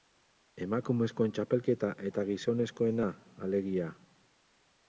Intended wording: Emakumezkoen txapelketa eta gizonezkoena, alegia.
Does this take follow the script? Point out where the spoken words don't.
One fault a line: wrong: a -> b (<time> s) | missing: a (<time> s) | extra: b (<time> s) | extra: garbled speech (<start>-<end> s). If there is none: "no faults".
no faults